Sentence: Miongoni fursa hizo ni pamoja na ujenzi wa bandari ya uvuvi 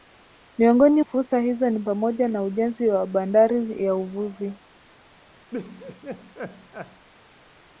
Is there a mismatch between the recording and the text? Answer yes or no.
no